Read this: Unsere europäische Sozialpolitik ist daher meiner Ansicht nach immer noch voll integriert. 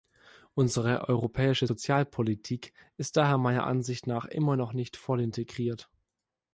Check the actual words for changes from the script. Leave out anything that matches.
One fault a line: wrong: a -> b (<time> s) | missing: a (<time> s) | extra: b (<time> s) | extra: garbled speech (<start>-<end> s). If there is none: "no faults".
extra: nicht (4.7 s)